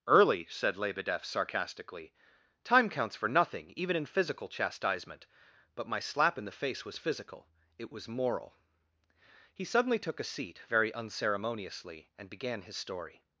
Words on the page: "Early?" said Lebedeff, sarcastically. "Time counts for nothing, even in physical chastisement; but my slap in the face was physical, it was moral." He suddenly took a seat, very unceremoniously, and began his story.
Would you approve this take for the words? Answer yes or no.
yes